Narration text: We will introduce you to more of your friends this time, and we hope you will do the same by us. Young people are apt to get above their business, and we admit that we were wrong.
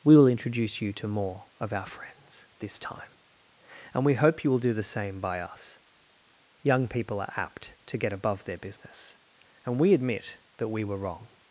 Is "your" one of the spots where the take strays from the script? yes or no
yes